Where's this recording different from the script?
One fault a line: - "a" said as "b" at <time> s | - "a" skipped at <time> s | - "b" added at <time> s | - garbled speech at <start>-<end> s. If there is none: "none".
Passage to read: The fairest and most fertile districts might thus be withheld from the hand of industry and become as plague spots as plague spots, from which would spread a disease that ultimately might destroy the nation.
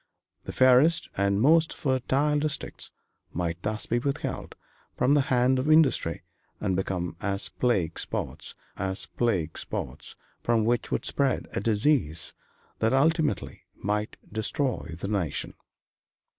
none